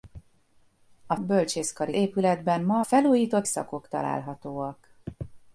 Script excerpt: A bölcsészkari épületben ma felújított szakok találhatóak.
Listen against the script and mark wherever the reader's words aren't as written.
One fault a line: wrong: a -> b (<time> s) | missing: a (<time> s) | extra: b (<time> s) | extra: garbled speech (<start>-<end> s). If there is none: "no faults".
no faults